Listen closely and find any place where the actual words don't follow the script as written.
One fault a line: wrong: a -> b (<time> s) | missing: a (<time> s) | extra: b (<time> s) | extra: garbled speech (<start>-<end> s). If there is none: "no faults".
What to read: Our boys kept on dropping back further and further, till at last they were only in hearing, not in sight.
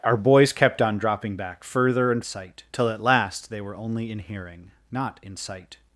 wrong: further -> sight (2.2 s)